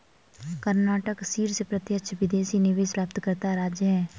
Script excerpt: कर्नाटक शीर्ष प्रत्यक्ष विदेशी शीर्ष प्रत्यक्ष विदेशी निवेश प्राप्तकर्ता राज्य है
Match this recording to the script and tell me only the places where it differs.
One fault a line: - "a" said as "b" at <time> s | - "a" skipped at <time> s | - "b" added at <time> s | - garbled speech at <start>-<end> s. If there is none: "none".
- "शीर्ष प्रत्यक्ष विदेशी" skipped at 2.6 s